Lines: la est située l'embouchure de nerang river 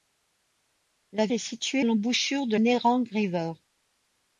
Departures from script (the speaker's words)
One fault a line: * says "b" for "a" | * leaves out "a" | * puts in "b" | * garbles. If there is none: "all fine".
all fine